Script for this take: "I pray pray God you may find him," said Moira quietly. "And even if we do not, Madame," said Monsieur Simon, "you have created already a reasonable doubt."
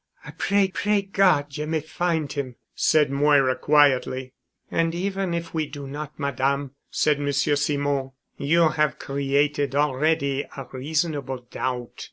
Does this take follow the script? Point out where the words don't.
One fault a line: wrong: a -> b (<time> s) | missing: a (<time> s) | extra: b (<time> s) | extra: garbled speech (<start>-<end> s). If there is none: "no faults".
no faults